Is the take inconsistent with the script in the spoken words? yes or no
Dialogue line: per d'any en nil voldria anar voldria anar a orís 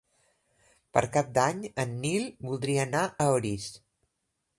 yes